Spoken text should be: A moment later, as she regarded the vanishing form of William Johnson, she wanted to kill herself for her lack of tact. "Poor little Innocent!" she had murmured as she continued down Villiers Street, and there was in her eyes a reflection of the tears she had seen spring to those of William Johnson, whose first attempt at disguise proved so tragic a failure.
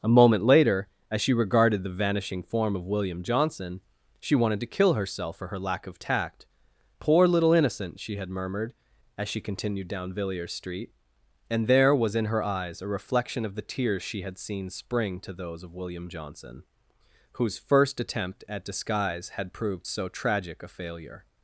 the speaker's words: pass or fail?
fail